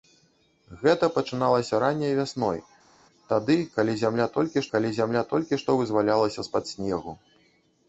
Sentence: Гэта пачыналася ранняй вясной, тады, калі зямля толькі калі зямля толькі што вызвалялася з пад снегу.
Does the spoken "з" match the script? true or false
true